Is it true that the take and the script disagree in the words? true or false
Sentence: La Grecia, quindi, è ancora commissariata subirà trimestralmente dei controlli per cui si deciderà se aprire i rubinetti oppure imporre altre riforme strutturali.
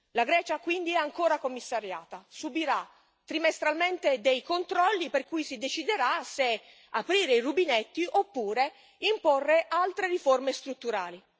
false